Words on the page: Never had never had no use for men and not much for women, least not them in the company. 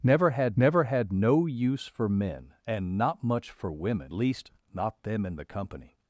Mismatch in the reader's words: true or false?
false